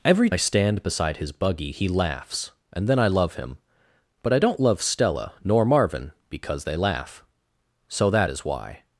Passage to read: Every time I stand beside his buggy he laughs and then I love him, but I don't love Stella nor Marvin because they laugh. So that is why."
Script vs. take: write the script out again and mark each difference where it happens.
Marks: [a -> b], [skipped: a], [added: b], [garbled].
Every [skipped: time] I stand beside his buggy he laughs and then I love him, but I don't love Stella nor Marvin because they laugh. So that is why."